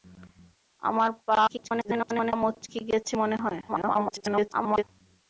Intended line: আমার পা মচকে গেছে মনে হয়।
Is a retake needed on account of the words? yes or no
yes